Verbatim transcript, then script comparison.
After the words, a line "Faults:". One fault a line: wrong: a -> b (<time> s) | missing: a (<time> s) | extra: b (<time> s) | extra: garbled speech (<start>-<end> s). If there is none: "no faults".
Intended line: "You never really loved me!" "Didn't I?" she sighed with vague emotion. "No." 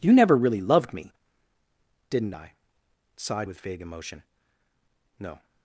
"You never really loved me!" "Didn't I?" sighed with vague emotion. "No."
Faults:
missing: she (2.5 s)